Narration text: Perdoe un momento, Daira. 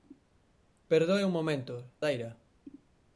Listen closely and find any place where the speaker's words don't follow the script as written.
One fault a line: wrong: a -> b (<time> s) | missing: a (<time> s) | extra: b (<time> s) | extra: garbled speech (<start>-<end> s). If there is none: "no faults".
no faults